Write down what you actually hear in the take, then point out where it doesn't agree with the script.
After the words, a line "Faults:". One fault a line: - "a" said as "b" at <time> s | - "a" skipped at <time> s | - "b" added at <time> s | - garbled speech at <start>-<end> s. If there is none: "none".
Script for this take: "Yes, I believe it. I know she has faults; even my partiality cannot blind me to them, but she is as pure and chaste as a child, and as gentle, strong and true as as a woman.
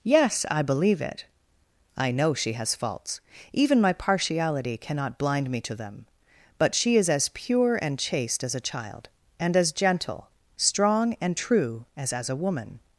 "Yes, I believe it. I know she has faults; even my partiality cannot blind me to them, but she is as pure and chaste as a child, and as gentle, strong and true as as a woman.
Faults:
none